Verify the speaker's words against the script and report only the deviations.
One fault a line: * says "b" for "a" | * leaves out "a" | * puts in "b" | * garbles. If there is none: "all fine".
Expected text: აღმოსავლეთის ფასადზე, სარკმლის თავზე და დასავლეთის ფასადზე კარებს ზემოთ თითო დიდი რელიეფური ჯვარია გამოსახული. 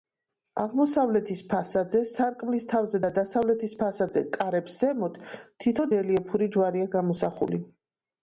* leaves out "დიდი"